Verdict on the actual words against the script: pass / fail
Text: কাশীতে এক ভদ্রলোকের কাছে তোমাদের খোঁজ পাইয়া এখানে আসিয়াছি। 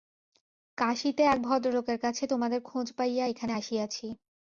pass